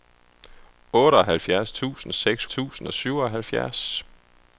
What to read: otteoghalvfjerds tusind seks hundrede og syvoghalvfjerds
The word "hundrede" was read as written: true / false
false